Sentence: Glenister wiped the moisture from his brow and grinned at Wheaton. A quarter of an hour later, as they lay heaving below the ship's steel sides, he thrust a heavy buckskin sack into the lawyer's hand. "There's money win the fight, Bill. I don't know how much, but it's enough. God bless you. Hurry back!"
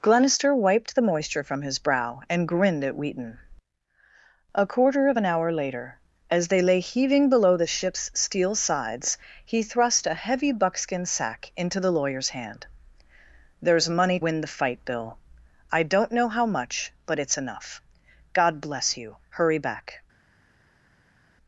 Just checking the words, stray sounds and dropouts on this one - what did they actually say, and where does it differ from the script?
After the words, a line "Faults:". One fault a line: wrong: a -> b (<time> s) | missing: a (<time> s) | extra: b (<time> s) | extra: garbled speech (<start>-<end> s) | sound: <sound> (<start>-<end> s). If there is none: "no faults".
Glenister wiped the moisture from his brow and grinned at Wheaton. A quarter of an hour later, as they lay heaving below the ship's steel sides, he thrust a heavy buckskin sack into the lawyer's hand. "There's money win the fight, Bill. I don't know how much, but it's enough. God bless you. Hurry back!"
Faults:
no faults